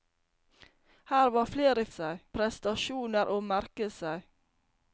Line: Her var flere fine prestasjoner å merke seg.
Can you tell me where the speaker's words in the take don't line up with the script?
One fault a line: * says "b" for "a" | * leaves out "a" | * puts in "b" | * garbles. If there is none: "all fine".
* says "seg" for "fine"